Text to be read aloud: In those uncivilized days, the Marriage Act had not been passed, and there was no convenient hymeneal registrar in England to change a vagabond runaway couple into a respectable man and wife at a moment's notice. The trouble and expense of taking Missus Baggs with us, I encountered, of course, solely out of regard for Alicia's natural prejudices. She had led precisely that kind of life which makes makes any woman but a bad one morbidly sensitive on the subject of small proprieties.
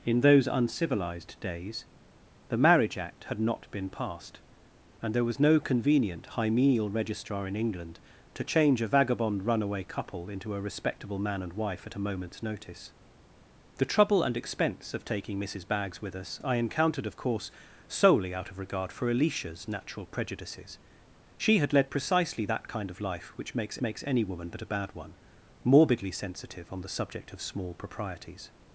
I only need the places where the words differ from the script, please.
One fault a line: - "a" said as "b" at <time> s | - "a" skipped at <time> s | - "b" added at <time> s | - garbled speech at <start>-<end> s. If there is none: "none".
none